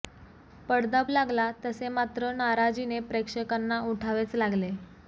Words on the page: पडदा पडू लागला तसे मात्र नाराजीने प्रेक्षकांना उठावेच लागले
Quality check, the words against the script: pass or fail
fail